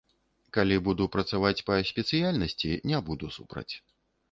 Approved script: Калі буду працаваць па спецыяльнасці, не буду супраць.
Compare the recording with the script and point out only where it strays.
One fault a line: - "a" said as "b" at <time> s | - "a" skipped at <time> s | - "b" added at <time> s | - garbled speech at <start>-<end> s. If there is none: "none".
none